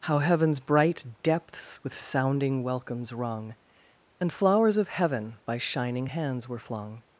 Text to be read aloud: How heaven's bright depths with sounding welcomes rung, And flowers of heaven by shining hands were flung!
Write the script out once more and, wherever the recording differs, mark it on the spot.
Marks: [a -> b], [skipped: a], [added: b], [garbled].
How heaven's bright depths with sounding welcomes rung, And flowers of heaven by shining hands were flung!